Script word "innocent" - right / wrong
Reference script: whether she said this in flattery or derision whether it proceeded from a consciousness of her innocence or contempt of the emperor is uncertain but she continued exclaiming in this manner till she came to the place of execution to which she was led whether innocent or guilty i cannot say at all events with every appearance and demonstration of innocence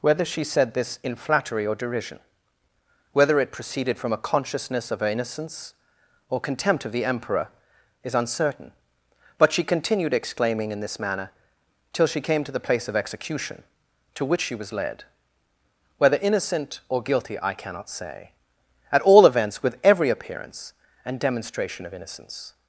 right